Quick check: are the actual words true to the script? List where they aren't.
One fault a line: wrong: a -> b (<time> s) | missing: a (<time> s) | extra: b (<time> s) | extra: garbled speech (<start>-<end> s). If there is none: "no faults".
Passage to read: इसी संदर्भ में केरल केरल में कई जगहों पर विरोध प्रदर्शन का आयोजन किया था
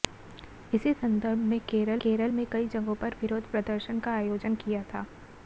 no faults